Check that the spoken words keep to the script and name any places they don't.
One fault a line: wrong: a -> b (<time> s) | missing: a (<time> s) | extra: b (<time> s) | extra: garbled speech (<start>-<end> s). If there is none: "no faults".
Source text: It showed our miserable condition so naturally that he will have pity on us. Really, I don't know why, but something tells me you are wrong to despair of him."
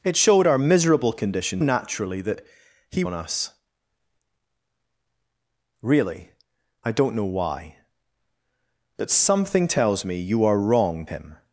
missing: so (1.6 s)
missing: will have pity (3.0 s)
missing: to despair of (11.1 s)